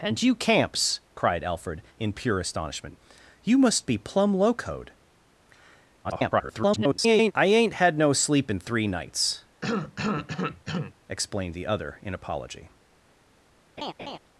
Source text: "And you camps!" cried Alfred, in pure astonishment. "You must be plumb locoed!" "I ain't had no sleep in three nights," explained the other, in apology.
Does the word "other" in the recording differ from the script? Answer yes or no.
no